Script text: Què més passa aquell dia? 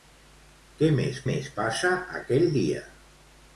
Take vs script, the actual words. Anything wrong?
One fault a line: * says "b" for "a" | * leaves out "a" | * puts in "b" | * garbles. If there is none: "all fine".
* puts in "més"